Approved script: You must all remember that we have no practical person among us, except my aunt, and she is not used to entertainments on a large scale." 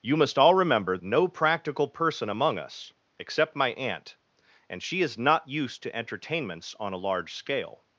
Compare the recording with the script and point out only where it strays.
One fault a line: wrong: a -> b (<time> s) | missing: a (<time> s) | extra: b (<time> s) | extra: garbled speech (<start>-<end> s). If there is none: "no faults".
missing: that we have (1.0 s)